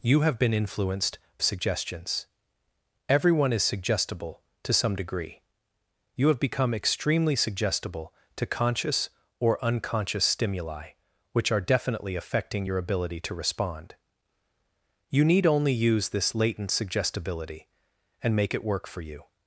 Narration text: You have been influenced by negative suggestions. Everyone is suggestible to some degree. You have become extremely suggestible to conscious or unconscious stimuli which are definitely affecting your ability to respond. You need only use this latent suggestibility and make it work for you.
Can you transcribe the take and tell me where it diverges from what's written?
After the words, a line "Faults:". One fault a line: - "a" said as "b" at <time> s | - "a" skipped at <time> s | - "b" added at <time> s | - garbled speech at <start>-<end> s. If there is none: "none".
You have been influenced suggestions. Everyone is suggestible to some degree. You have become extremely suggestible to conscious or unconscious stimuli which are definitely affecting your ability to respond. You need only use this latent suggestibility and make it work for you.
Faults:
- "by negative" skipped at 1.2 s